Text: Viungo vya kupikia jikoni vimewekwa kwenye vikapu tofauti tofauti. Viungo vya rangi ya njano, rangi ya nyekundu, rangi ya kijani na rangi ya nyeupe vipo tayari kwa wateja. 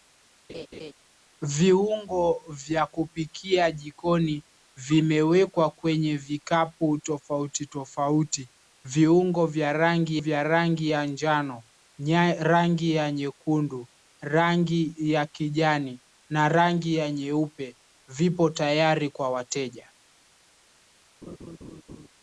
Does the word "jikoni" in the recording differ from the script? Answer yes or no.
no